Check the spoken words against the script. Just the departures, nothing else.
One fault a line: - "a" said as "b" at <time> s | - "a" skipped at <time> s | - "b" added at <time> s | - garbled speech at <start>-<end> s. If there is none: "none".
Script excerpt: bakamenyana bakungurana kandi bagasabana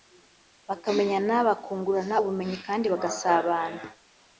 - "ubumenyi" added at 2.2 s